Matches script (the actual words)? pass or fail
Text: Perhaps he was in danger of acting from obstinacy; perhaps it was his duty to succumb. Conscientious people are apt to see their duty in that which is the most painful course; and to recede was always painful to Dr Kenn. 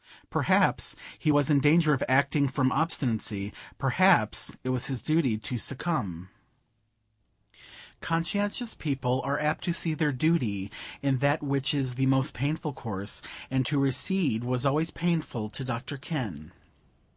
pass